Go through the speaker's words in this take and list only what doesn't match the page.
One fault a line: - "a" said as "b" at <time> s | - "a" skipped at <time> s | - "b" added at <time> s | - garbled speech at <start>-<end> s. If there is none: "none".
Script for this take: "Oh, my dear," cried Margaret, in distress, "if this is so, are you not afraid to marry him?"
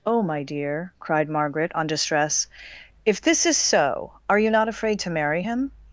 - "in" said as "on" at 1.8 s